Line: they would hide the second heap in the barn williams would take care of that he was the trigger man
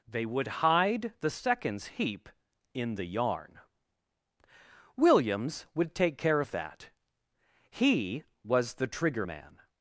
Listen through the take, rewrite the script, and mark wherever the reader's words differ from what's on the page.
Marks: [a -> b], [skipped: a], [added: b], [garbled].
they would hide the [second -> seconds] heap in the [barn -> yarn] williams would take care of that he was the trigger man